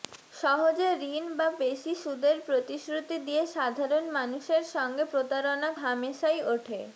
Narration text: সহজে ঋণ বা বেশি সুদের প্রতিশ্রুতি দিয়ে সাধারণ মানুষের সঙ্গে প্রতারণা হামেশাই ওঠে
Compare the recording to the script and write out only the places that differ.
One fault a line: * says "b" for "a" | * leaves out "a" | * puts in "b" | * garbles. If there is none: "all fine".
all fine